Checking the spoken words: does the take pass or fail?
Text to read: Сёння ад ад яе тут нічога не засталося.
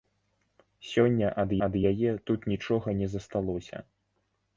pass